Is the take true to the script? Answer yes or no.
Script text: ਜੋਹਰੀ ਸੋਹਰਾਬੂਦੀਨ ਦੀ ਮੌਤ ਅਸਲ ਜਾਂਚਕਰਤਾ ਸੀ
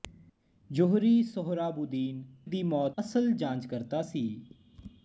yes